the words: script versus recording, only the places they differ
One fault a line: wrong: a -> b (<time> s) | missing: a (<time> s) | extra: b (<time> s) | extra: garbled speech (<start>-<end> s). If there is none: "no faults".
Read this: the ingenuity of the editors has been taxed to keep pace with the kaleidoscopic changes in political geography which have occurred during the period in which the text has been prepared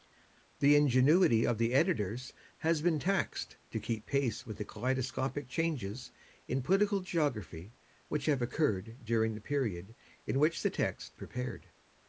missing: has been (11.2 s)